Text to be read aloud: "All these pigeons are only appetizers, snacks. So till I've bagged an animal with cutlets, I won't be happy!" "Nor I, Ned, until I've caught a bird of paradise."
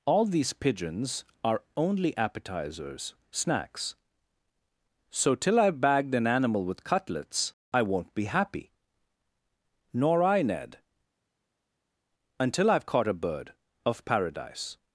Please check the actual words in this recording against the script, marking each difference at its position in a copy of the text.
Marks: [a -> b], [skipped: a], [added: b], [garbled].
"All these pigeons are only appetizers, snacks. So till I've bagged an animal with cutlets, I won't be happy!" "Nor I, Ned, until I've caught a bird of paradise."